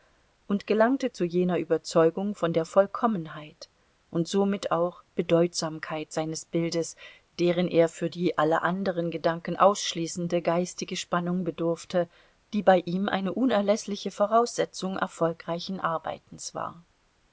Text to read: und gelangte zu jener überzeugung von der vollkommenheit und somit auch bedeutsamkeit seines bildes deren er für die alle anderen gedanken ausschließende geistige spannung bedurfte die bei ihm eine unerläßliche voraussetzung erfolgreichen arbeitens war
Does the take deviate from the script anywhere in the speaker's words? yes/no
no